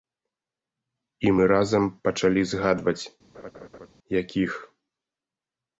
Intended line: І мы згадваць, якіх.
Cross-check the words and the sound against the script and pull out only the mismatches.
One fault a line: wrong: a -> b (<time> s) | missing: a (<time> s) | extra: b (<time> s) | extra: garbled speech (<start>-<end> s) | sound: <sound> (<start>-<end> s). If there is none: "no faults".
extra: разам пачалі (1.5 s)
sound: laugh (3.3-3.9 s)